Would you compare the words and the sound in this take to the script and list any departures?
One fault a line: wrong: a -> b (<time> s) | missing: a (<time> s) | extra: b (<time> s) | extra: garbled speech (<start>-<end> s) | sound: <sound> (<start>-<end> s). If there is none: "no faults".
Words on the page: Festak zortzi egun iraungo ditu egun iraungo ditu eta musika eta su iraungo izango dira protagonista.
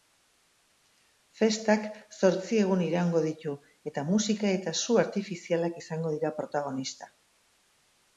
missing: egun iraungo ditu (3.5 s)
wrong: iraungo -> artifizialak (5.0 s)